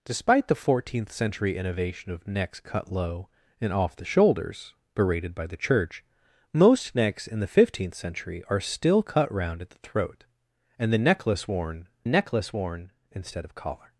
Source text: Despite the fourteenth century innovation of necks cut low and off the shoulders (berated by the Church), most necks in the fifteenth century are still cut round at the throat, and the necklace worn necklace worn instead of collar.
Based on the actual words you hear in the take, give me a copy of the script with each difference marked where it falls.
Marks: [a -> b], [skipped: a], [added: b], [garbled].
Despite the fourteenth century innovation of necks cut low and off the shoulders (berated by the Church), most necks in the fifteenth century are still cut round at the throat, and the necklace worn necklace worn instead of collar.